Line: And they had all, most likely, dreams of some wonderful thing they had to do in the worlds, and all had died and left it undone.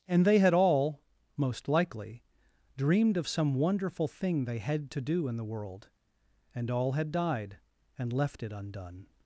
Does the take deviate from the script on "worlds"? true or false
true